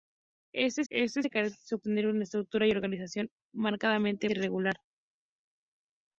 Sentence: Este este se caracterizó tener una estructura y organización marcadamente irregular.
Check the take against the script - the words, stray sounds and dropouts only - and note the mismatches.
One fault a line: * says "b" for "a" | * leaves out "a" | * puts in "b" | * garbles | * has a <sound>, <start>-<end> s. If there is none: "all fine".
all fine